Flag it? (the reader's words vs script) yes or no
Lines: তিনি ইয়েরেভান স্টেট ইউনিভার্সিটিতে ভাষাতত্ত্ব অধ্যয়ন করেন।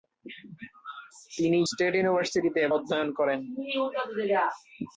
yes